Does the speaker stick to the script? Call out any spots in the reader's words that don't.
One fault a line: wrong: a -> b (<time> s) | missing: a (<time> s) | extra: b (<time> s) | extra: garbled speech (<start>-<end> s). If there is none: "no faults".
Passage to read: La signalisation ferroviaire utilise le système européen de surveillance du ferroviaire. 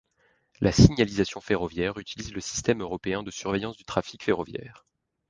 extra: trafic (3.8 s)